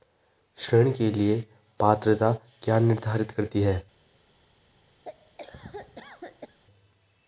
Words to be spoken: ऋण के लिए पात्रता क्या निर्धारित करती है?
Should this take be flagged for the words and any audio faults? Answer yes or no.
yes